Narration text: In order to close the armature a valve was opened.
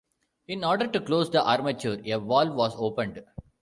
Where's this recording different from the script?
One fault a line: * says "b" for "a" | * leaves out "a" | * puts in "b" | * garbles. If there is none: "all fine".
all fine